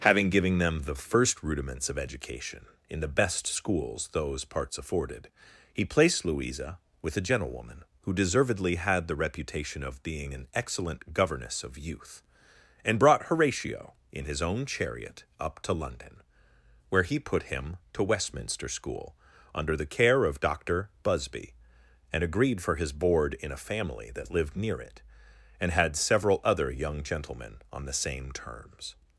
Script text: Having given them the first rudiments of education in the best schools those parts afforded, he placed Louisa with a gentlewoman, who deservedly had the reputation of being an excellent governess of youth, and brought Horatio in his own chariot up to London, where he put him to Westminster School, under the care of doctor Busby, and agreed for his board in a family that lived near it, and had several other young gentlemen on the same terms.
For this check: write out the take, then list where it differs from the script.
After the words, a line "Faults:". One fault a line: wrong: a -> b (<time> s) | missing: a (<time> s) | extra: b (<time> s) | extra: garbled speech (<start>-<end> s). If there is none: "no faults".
Having given them the first rudiments of education in the best schools those parts afforded, he placed Louisa with a gentlewoman, who deservedly had the reputation of being an excellent governess of youth, and brought Horatio in his own chariot up to London, where he put him to Westminster School, under the care of doctor Busby, and agreed for his board in a family that lived near it, and had several other young gentlemen on the same terms.
Faults:
no faults